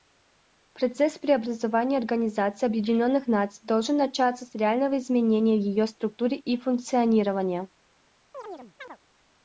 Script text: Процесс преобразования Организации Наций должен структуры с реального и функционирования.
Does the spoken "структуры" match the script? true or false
false